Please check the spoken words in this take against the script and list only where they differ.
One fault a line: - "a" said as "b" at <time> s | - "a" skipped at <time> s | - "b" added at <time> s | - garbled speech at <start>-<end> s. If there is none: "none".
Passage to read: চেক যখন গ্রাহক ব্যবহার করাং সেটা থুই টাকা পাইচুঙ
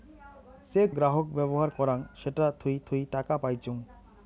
- "যখন" skipped at 0.9 s
- "থুই" added at 2.9 s